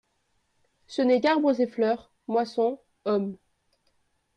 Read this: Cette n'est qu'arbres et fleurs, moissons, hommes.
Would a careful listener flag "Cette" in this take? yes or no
yes